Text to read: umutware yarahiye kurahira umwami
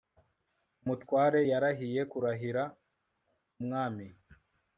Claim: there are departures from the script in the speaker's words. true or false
false